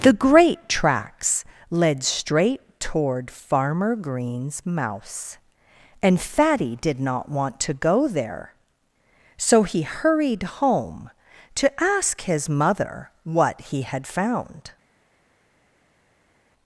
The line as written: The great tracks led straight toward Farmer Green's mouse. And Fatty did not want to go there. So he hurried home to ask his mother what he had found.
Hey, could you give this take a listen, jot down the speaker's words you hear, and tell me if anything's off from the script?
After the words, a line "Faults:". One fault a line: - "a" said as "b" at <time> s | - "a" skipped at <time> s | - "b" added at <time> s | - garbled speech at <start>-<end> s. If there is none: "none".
The great tracks led straight toward Farmer Green's mouse. And Fatty did not want to go there. So he hurried home to ask his mother what he had found.
Faults:
none